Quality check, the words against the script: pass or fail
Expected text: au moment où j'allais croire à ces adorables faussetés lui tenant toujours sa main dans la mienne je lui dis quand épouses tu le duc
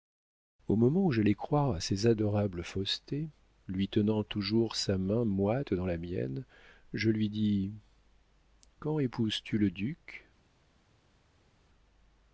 fail